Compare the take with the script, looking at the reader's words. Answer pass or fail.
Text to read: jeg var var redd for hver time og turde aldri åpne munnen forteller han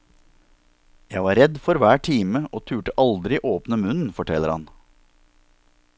fail